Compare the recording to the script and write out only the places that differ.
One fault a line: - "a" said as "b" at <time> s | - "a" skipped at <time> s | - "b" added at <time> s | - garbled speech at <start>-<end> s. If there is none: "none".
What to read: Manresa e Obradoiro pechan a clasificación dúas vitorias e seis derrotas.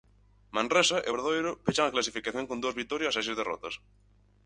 - "con" added at 2.5 s